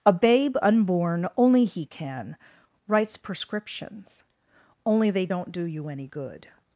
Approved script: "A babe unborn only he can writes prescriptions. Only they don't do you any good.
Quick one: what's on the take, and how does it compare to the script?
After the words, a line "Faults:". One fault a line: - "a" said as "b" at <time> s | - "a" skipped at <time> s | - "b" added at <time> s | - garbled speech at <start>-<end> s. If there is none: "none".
"A babe unborn only he can writes prescriptions. Only they don't do you any good.
Faults:
none